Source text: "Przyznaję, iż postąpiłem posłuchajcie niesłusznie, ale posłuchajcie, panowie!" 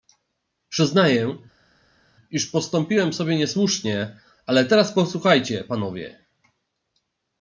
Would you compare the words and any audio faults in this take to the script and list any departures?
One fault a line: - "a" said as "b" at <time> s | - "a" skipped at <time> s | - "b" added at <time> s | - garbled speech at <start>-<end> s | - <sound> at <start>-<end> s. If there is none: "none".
- "posłuchajcie" said as "sobie" at 3.1 s
- "teraz" added at 4.6 s